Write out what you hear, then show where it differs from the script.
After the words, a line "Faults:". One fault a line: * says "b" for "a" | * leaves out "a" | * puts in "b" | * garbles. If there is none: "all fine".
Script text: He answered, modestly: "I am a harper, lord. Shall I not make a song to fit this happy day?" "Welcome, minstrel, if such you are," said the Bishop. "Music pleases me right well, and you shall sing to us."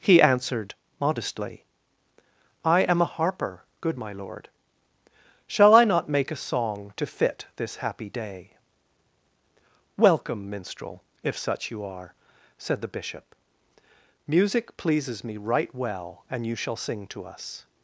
He answered, modestly: "I am a harper, good my lord. Shall I not make a song to fit this happy day?" "Welcome, minstrel, if such you are," said the Bishop. "Music pleases me right well, and you shall sing to us."
Faults:
* puts in "good my"